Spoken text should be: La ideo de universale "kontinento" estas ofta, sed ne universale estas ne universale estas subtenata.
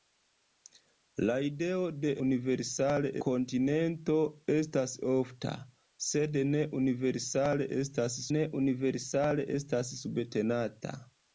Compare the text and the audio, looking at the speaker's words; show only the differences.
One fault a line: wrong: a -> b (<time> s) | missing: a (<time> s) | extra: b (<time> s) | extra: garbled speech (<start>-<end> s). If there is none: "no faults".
no faults